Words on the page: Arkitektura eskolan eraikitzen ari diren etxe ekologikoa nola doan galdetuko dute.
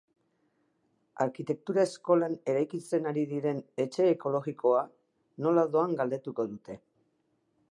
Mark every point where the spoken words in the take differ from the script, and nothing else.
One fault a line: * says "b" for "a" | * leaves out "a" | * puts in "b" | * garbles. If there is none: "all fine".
all fine